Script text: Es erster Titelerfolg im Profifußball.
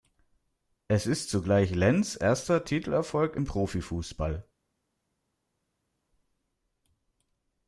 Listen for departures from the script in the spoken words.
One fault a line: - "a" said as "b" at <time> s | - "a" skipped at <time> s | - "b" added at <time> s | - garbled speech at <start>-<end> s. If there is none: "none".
- "ist zugleich Lenz" added at 1.1 s